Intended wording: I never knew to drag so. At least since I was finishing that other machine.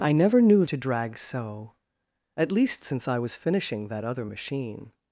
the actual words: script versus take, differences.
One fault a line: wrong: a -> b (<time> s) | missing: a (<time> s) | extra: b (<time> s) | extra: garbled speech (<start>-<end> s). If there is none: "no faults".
no faults